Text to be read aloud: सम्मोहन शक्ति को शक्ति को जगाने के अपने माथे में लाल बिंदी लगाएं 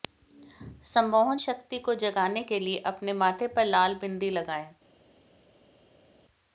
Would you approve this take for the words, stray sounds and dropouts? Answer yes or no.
no